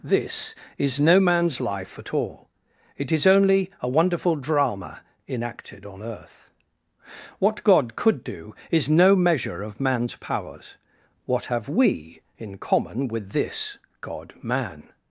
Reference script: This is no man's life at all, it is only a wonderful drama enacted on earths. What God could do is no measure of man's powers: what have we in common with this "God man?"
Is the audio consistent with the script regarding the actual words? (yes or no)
no